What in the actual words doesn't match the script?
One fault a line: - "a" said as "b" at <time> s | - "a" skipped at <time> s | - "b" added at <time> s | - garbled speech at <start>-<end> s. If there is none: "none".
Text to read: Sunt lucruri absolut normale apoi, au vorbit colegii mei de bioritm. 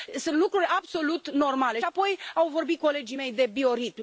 none